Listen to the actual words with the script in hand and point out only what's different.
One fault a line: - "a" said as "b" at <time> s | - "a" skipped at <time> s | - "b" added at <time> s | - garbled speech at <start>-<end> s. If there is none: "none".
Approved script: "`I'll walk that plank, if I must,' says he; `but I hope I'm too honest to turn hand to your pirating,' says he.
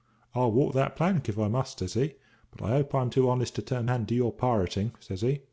none